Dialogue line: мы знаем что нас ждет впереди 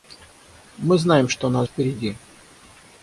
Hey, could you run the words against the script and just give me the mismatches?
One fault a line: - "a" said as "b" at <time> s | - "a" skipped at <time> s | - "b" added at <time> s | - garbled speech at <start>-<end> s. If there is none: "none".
- "ждет" skipped at 1.7 s